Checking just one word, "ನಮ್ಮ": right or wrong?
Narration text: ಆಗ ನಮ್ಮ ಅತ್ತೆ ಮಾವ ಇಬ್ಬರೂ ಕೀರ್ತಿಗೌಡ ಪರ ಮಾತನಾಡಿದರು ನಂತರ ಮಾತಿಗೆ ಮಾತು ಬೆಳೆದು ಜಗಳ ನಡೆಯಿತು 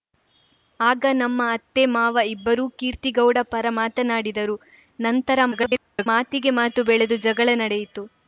right